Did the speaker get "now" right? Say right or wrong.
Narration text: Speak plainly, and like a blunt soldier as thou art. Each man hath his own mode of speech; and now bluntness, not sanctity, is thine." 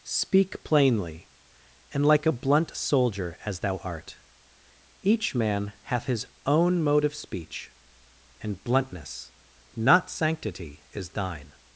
wrong